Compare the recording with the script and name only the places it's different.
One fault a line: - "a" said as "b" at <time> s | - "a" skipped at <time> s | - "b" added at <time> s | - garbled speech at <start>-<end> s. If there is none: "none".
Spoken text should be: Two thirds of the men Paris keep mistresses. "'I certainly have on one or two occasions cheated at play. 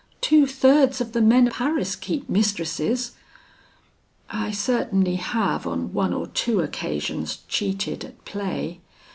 none